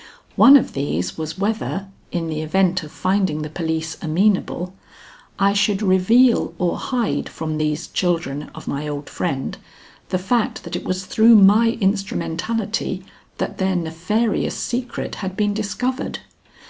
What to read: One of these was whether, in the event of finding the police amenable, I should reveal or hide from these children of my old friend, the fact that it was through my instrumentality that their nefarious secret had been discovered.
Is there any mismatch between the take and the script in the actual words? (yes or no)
no